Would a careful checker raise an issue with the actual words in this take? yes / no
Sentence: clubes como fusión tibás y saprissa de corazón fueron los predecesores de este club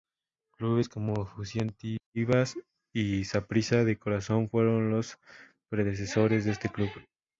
no